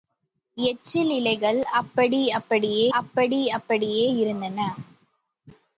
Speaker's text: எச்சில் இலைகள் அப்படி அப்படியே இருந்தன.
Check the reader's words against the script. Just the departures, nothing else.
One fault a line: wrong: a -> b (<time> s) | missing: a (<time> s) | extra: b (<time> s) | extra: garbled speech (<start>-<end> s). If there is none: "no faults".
extra: அப்படி அப்படியே (3.0 s)